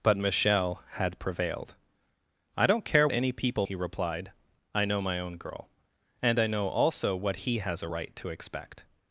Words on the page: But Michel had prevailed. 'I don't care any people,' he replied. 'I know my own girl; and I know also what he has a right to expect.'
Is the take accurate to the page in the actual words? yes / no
yes